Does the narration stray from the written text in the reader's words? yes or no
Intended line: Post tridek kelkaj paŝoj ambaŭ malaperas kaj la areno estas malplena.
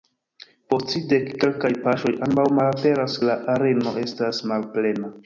yes